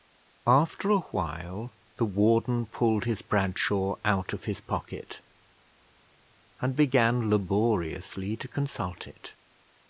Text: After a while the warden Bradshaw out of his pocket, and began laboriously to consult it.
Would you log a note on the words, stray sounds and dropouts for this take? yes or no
yes